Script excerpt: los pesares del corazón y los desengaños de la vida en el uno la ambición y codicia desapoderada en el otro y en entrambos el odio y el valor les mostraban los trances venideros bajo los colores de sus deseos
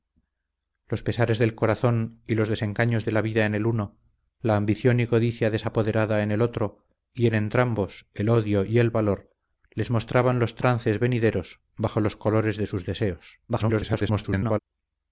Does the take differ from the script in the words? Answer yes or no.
yes